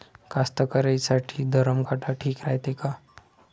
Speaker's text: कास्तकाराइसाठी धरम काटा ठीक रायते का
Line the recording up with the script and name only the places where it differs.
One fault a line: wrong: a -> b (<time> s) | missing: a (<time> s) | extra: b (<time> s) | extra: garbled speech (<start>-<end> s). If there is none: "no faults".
no faults